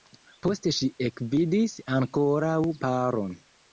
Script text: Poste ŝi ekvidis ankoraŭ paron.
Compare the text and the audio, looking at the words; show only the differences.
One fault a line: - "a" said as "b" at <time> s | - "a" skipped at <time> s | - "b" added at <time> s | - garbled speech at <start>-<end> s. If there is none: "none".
none